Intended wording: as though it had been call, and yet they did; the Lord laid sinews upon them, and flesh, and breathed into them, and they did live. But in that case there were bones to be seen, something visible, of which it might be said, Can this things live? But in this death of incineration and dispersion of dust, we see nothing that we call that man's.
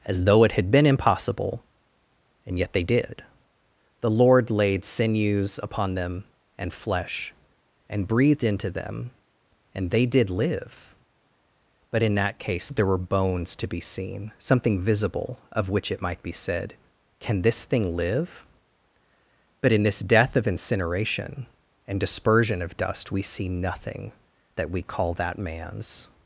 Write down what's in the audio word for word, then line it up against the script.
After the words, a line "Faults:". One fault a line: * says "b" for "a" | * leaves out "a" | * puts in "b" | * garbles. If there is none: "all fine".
as though it had been impossible, and yet they did; the Lord laid sinews upon them, and flesh, and breathed into them, and they did live. But in that case there were bones to be seen, something visible, of which it might be said, Can this thing live? But in this death of incineration and dispersion of dust, we see nothing that we call that man's.
Faults:
* says "impossible" for "call"
* says "thing" for "things"